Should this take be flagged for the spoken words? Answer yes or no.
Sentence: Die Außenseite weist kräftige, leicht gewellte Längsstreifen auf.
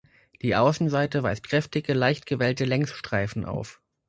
no